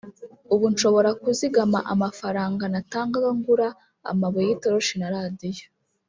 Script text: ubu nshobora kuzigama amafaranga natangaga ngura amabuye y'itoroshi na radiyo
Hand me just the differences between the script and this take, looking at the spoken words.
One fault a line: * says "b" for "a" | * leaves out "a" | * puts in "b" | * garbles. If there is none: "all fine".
all fine